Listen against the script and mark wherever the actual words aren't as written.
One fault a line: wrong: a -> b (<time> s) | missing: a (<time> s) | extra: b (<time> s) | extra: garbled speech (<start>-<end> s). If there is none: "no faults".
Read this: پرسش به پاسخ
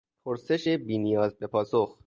extra: بی نیاز (0.7 s)